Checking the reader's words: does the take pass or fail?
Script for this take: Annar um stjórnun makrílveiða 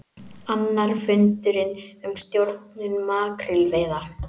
fail